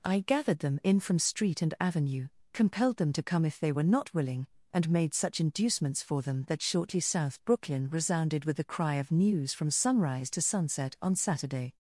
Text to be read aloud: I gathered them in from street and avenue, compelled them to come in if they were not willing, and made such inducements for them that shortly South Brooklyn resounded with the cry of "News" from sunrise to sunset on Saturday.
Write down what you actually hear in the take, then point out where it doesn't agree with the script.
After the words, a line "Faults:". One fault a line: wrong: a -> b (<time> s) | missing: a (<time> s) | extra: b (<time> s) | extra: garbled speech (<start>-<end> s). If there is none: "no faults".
I gathered them in from street and avenue, compelled them to come if they were not willing, and made such inducements for them that shortly South Brooklyn resounded with the cry of "News" from sunrise to sunset on Saturday.
Faults:
missing: in (3.5 s)